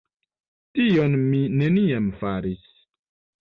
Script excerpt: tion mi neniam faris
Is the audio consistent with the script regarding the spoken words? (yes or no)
yes